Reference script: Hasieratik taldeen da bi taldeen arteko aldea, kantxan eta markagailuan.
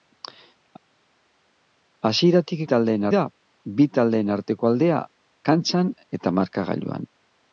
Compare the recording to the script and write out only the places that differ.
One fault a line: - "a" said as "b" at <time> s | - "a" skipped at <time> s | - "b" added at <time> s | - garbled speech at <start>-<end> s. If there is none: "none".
none